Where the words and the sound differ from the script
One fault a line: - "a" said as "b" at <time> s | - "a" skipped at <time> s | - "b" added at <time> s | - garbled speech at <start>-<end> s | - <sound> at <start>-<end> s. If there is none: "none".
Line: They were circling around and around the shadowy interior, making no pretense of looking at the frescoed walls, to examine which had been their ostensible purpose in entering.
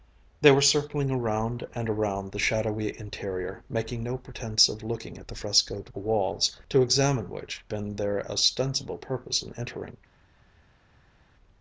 - "had" skipped at 7.6 s